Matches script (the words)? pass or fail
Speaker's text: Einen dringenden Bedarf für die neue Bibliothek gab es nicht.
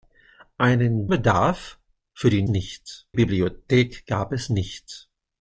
fail